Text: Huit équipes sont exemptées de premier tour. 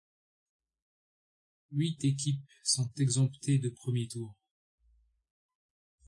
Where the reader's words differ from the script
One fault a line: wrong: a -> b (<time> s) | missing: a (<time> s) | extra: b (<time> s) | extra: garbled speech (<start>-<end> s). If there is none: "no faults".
no faults